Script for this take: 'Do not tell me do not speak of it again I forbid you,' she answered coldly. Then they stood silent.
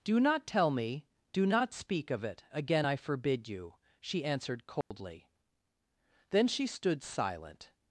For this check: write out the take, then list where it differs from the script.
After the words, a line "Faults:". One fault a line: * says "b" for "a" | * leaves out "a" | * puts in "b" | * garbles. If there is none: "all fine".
'Do not tell me do not speak of it again I forbid you,' she answered coldly. Then she stood silent.
Faults:
* says "she" for "they"